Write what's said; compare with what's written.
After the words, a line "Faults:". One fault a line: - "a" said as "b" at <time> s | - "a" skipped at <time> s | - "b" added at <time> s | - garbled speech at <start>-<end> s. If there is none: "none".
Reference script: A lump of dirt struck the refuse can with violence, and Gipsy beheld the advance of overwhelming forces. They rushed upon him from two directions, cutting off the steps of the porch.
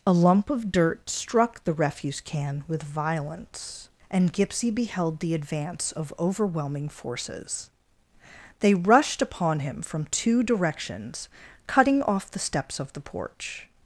A lump of dirt struck the refuse can with violence, and Gipsy beheld the advance of overwhelming forces. They rushed upon him from two directions, cutting off the steps of the porch.
Faults:
none